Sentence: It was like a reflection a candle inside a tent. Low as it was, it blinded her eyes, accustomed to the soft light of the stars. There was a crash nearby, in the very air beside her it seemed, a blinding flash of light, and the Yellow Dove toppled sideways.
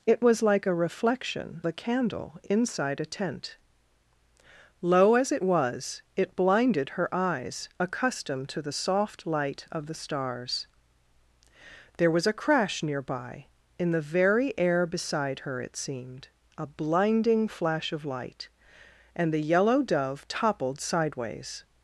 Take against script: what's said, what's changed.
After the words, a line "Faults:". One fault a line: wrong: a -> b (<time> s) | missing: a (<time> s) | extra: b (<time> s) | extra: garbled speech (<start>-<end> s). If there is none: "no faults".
It was like a reflection a candle inside a tent. Low as it was, it blinded her eyes, accustomed to the soft light of the stars. There was a crash nearby, in the very air beside her it seemed, a blinding flash of light, and the Yellow Dove toppled sideways.
Faults:
no faults